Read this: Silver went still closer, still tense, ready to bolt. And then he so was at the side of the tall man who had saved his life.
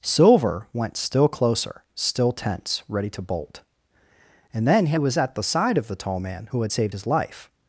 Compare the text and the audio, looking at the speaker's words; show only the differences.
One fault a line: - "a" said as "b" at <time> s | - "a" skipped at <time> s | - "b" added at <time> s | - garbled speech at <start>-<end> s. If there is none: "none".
- "so" skipped at 5.0 s